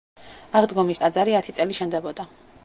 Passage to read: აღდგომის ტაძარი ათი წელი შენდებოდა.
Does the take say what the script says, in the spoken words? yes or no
yes